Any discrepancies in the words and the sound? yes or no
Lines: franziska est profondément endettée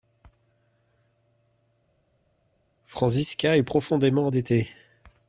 no